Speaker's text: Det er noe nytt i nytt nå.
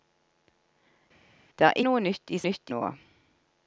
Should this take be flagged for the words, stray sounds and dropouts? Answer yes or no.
no